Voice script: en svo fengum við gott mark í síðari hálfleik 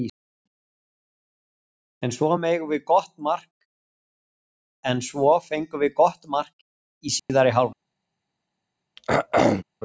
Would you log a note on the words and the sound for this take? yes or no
yes